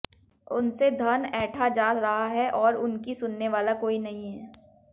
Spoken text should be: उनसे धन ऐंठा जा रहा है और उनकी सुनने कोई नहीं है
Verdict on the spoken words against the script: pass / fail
fail